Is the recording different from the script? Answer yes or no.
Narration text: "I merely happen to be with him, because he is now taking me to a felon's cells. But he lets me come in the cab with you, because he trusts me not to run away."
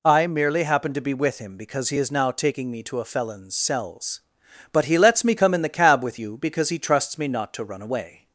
no